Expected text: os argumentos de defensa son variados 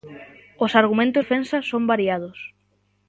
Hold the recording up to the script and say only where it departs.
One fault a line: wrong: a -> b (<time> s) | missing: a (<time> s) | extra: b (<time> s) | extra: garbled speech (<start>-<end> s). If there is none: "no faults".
missing: de (1.2 s)